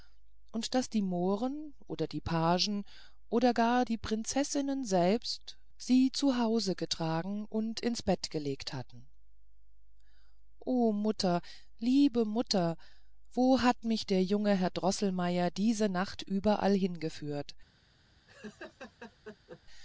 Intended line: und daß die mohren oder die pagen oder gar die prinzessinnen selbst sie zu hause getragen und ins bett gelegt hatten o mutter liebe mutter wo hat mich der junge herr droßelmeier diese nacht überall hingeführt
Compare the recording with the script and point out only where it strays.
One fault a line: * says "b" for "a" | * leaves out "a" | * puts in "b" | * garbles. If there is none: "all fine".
all fine